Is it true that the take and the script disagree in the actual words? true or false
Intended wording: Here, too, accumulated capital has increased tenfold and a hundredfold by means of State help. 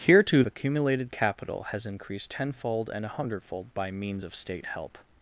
false